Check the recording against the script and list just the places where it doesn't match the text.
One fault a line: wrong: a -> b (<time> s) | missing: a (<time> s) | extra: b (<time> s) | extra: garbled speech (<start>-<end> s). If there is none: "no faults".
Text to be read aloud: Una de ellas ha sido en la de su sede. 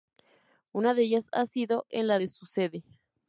no faults